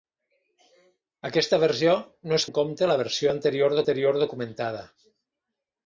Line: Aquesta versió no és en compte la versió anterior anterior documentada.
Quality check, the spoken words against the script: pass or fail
pass